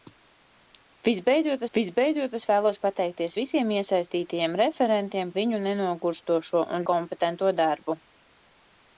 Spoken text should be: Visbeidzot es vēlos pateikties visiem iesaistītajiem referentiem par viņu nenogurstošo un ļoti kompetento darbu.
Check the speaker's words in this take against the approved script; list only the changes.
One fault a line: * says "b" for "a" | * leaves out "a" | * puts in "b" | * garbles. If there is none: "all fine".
* puts in "visbeidzot"
* leaves out "par"
* leaves out "ļoti"